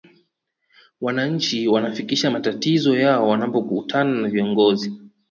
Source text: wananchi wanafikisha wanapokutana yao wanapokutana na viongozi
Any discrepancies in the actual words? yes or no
yes